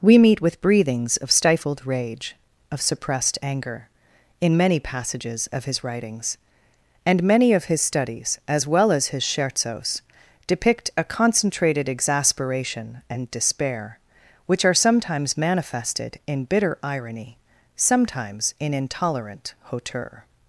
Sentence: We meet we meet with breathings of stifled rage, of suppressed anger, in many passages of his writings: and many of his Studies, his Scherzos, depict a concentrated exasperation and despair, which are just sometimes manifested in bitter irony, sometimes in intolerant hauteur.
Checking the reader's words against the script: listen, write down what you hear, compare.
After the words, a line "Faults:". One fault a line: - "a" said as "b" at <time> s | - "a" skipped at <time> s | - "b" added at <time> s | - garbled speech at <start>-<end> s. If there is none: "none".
We meet with breathings of stifled rage, of suppressed anger, in many passages of his writings: and many of his Studies, as well as his Scherzos, depict a concentrated exasperation and despair, which are sometimes manifested in bitter irony, sometimes in intolerant hauteur.
Faults:
- "we meet" skipped at 0.4 s
- "as well as" added at 8.5 s
- "just" skipped at 14.7 s